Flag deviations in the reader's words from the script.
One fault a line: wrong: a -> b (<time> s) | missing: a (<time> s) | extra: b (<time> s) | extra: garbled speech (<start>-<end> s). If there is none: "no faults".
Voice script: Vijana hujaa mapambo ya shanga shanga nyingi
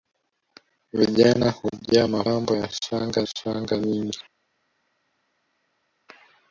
no faults